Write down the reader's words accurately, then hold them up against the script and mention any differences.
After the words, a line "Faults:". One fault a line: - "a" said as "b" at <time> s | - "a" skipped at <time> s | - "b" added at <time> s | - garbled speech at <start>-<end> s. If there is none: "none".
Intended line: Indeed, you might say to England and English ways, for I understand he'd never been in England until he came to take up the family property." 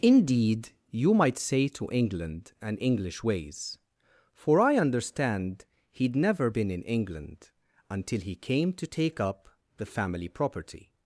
Indeed, you might say to England and English ways, for I understand he'd never been in England until he came to take up the family property."
Faults:
none